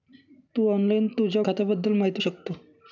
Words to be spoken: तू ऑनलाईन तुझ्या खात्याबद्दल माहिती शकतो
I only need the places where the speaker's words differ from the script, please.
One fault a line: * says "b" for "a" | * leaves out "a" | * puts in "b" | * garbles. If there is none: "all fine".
all fine